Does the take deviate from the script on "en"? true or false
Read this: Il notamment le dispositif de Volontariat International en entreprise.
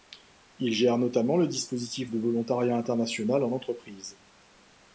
false